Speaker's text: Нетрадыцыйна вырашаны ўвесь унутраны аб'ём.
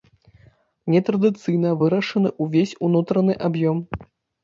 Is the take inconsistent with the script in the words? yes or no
no